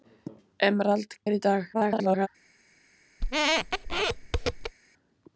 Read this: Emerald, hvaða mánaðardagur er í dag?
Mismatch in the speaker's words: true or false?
true